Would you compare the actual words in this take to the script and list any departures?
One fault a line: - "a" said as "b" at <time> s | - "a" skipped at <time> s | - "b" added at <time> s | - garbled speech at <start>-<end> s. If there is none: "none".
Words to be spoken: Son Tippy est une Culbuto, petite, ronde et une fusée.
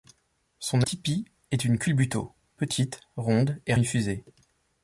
none